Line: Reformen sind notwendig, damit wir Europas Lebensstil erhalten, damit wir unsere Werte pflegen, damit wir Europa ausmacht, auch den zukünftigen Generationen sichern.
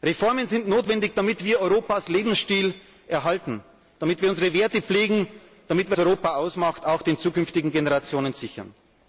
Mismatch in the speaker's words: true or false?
false